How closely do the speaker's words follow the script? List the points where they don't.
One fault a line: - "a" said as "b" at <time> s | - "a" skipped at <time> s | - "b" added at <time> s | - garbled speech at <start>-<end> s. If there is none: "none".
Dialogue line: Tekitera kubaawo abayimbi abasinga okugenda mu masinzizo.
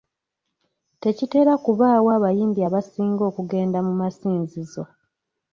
none